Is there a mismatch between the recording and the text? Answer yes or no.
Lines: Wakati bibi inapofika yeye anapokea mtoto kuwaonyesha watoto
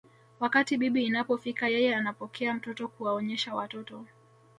no